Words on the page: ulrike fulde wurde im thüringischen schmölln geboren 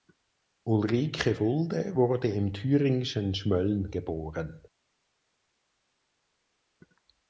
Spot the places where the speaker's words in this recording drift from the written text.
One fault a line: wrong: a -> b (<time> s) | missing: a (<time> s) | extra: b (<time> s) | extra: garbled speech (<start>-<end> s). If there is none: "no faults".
no faults